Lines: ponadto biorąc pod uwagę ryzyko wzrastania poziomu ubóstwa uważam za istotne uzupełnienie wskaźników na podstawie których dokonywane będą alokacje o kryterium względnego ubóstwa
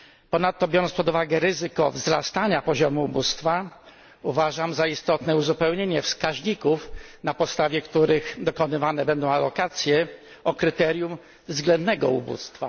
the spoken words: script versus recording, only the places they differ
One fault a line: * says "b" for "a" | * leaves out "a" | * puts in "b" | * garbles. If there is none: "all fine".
all fine